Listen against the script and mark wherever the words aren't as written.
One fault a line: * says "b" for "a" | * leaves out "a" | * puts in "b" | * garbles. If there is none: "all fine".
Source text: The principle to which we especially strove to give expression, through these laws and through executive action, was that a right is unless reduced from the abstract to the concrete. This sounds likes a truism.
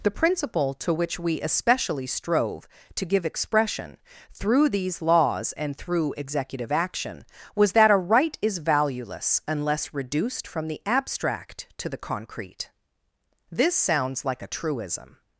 * puts in "valueless"
* says "like" for "likes"